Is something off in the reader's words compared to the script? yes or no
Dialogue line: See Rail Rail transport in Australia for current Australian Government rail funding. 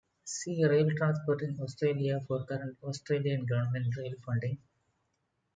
yes